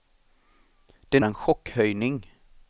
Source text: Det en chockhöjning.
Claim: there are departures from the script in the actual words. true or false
false